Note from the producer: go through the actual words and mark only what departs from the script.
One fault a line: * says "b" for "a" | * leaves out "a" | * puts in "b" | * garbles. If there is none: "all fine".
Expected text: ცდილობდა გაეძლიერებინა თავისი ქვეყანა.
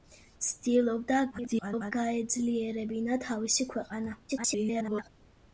* garbles
* garbles